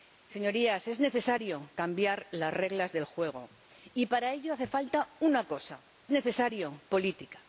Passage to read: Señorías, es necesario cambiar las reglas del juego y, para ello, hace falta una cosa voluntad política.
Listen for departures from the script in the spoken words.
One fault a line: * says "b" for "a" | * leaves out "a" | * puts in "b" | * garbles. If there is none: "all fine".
* says "necesario" for "voluntad"